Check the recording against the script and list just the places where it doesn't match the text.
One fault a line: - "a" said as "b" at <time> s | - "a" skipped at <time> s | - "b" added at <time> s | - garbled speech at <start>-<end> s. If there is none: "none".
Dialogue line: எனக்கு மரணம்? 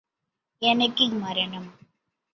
none